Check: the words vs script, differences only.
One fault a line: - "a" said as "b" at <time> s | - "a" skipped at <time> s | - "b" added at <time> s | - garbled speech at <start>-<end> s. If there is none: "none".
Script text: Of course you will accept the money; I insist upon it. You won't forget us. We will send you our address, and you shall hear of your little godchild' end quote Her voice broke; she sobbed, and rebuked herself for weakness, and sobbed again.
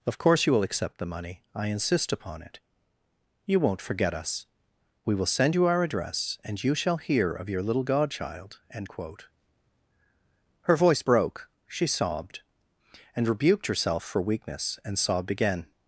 none